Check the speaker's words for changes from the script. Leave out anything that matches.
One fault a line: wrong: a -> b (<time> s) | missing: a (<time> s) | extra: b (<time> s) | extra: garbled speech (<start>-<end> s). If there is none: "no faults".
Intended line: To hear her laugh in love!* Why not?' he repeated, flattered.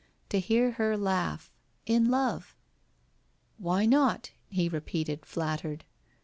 no faults